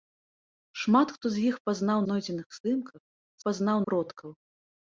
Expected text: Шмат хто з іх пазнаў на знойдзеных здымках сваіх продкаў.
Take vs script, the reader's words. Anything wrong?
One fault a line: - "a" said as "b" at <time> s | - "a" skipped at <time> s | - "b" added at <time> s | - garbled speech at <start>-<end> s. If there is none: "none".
- "на" skipped at 2.0 s
- "сваіх" said as "пазнаў" at 3.5 s